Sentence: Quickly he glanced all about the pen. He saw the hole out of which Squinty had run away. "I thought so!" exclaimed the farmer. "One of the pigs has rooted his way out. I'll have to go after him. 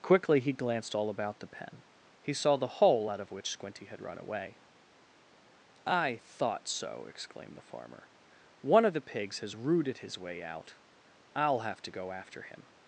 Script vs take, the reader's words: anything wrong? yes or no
no